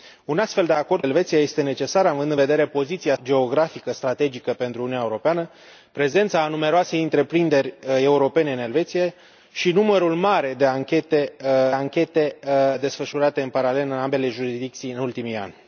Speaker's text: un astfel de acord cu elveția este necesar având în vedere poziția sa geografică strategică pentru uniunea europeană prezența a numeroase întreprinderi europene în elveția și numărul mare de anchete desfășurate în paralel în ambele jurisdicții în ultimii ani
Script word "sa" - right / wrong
wrong